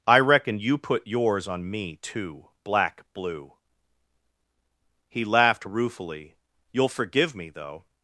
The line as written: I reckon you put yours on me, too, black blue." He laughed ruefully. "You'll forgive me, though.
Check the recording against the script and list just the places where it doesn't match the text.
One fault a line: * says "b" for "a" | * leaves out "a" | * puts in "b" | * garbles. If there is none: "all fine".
all fine